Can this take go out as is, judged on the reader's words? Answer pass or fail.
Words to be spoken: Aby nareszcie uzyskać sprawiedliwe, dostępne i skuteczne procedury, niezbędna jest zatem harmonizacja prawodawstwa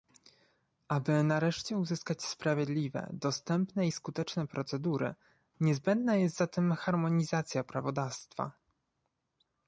pass